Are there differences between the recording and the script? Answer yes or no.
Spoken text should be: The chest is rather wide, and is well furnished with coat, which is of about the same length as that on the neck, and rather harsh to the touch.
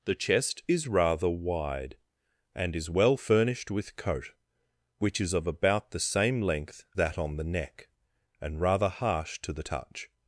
yes